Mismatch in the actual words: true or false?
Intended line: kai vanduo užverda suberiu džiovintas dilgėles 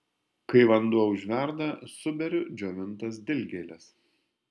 false